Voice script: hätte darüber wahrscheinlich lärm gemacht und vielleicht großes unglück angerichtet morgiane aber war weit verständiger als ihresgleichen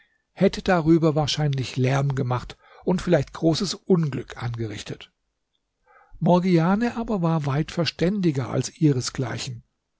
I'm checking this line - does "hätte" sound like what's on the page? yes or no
yes